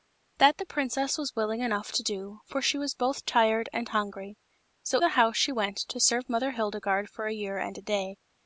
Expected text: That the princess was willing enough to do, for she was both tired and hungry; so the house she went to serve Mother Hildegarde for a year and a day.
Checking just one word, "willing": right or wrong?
right